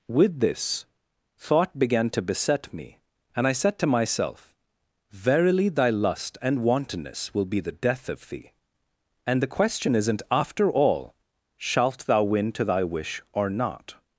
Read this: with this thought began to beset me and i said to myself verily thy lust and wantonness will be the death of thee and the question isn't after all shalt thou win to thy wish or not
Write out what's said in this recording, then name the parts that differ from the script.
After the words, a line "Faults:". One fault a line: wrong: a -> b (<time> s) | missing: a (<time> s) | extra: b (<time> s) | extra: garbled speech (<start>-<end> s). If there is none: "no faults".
with this thought began to beset me and i said to myself verily thy lust and wantonness will be the death of thee and the question isn't after all shalt thou win to thy wish or not
Faults:
no faults